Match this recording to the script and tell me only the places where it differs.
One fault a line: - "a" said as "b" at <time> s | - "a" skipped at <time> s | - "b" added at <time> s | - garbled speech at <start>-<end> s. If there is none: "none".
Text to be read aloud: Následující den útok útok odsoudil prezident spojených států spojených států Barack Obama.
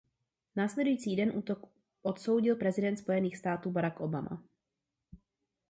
- "útok" skipped at 1.7 s
- "spojených států" skipped at 3.7 s